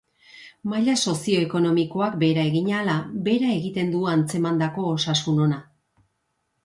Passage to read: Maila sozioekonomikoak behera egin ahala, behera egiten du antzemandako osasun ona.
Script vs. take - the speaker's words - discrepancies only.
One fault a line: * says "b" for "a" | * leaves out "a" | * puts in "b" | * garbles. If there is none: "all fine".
all fine